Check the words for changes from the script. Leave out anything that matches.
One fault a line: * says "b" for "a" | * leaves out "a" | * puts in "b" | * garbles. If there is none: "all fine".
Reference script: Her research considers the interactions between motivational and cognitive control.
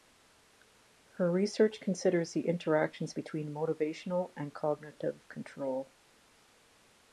all fine